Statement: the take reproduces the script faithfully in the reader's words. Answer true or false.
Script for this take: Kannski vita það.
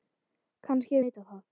true